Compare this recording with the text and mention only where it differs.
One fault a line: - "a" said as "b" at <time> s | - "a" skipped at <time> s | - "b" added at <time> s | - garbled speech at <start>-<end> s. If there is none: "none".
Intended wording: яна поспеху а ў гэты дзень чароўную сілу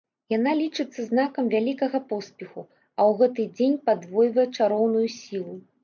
- "лічыцца знакам вялікага" added at 0.6 s
- "падвойвае" added at 3.9 s